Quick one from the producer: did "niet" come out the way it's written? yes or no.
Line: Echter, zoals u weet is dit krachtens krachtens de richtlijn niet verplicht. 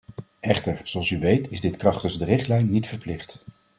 yes